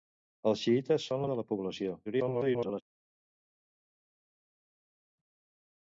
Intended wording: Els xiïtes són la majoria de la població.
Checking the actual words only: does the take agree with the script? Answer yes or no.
no